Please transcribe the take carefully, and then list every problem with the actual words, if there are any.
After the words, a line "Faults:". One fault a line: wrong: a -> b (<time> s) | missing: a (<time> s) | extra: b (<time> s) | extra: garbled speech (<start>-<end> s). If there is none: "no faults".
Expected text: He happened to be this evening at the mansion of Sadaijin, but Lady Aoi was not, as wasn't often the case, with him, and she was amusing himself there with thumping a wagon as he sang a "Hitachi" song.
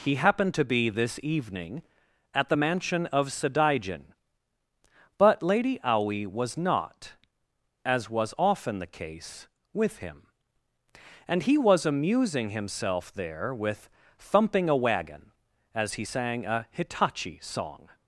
He happened to be this evening at the mansion of Sadaijin, but Lady Aoi was not, as was often the case, with him, and he was amusing himself there with thumping a wagon as he sang a "Hitachi" song.
Faults:
wrong: wasn't -> was (8.1 s)
wrong: she -> he (11.4 s)